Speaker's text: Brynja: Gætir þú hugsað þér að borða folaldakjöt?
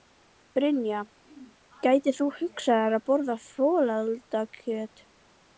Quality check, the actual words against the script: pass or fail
pass